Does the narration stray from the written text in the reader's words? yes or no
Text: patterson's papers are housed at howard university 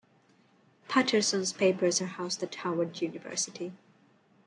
no